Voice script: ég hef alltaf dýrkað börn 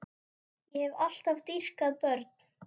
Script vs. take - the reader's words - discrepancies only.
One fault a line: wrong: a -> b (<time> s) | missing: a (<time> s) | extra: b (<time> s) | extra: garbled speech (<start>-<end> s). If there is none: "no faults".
no faults